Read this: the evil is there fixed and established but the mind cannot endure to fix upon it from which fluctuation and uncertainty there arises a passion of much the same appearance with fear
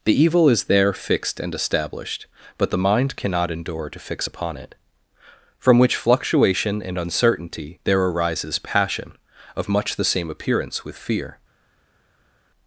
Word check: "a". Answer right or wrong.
wrong